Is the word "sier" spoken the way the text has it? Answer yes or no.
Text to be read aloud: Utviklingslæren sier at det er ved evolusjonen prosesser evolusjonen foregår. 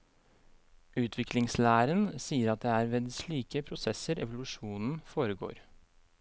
yes